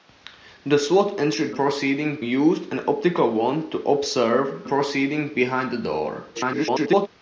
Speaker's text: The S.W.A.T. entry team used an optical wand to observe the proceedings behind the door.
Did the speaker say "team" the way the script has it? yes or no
no